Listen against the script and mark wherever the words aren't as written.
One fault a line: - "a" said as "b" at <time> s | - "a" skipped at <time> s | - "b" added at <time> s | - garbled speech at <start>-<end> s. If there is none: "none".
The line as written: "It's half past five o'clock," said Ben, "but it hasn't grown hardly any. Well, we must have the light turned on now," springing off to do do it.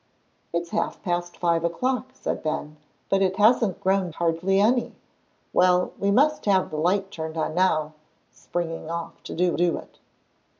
none